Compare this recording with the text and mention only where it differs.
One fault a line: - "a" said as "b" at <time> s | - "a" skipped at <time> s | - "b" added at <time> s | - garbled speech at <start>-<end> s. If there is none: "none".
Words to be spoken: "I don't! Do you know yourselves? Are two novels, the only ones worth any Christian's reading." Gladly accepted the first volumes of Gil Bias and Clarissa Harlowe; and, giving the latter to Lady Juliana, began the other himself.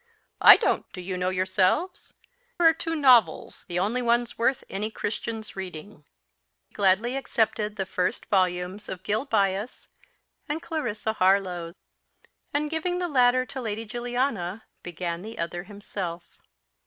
none